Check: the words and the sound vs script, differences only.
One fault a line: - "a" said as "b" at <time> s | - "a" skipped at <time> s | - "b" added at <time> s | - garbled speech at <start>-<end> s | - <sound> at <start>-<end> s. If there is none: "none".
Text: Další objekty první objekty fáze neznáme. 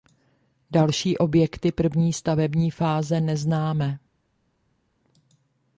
- "objekty" said as "stavební" at 2.1 s